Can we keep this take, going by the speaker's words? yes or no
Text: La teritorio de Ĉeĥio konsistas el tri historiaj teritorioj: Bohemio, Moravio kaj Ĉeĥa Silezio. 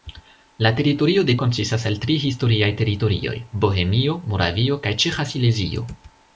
no